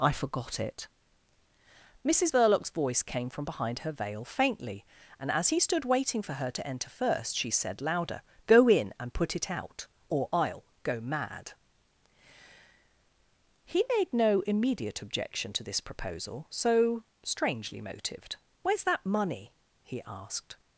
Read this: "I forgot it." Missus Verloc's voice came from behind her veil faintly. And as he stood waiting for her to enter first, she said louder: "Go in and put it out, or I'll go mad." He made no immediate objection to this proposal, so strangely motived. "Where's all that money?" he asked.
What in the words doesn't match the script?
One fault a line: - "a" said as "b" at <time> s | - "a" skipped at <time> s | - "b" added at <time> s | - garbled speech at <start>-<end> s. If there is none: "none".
- "all" skipped at 18.8 s